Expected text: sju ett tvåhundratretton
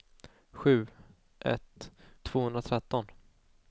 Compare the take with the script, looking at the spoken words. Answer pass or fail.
pass